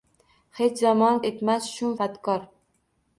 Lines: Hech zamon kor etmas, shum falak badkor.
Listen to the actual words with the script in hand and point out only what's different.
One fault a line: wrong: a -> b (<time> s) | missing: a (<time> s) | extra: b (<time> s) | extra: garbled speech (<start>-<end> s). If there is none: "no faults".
missing: kor (1.2 s)
missing: falak (2.0 s)